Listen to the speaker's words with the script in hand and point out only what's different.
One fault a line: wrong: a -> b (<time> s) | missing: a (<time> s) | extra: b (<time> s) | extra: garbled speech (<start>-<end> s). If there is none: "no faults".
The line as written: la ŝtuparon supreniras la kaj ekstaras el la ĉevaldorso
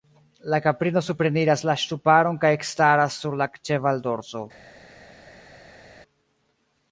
wrong: ŝtuparon -> kaprino (0.7 s)
extra: ŝtuparon (1.8 s)
wrong: el -> sur (3.2 s)